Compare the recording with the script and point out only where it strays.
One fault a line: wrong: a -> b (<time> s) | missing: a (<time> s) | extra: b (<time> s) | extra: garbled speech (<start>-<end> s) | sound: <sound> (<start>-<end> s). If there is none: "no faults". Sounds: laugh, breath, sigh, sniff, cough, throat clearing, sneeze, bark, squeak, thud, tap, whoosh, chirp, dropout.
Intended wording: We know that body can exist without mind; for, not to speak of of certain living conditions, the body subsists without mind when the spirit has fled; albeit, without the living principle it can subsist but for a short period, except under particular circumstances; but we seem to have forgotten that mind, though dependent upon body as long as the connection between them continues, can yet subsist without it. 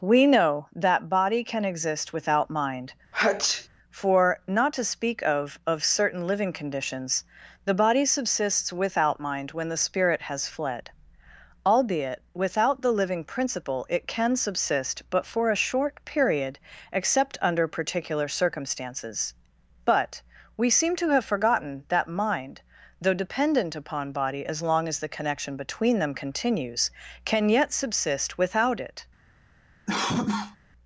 sound: sneeze (3.1-3.7 s)
sound: cough (29.9-30.6 s)